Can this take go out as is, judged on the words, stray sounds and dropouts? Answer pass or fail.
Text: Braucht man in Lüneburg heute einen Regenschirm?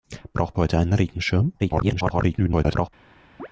fail